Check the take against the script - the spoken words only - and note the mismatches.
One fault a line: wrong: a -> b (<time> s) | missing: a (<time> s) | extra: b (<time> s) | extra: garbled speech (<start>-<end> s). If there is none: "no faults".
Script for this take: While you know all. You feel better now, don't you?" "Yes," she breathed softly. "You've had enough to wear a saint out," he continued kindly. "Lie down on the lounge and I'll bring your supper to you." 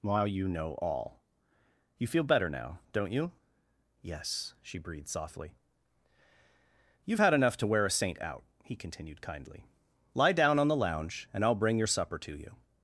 no faults